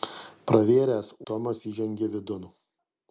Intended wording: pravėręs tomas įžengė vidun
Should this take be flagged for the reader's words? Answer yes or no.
no